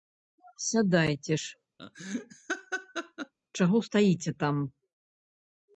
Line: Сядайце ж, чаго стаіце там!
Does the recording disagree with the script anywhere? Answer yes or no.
no